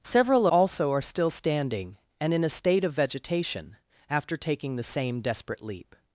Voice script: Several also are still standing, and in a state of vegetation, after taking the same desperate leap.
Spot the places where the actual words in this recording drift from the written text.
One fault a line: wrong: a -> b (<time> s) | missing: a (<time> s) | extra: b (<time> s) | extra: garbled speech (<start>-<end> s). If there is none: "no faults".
no faults